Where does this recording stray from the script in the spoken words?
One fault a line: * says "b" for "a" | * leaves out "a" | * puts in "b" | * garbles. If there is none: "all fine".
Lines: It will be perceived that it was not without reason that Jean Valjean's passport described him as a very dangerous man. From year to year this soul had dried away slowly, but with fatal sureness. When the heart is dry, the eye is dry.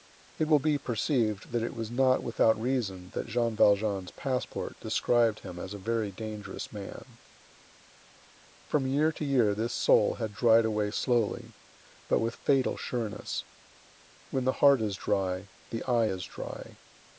all fine